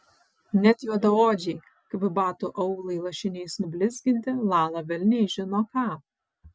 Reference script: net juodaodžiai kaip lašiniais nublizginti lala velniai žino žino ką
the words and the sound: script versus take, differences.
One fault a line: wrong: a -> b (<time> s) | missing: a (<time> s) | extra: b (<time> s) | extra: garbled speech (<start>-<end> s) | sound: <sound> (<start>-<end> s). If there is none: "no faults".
extra: batų aulai (2.2 s)
missing: žino (5.7 s)